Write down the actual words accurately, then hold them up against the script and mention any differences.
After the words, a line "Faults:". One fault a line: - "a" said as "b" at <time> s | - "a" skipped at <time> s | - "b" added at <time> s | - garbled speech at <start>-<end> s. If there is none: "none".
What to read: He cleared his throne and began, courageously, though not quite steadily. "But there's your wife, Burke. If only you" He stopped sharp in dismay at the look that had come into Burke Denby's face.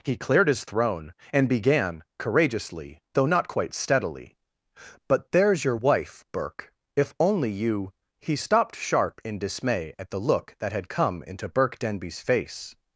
He cleared his throne and began, courageously, though not quite steadily. "But there's your wife, Burke. If only you" He stopped sharp in dismay at the look that had come into Burke Denby's face.
Faults:
none